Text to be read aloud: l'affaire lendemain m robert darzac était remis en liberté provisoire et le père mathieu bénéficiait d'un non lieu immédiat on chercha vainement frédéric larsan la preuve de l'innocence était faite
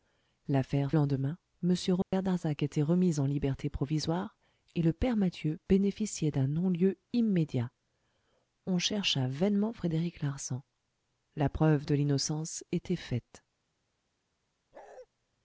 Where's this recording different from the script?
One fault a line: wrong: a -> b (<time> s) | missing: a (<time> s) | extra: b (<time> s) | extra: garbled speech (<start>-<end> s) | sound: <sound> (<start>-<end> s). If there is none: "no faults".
sound: dropout (2.0-2.1 s)
sound: bark (14.7-15.1 s)